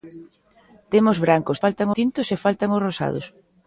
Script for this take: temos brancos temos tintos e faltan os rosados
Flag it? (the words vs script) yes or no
yes